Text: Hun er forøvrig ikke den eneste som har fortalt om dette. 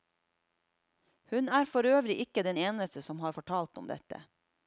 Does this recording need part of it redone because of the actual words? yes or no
no